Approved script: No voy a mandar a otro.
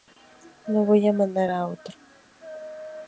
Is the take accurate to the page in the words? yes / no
yes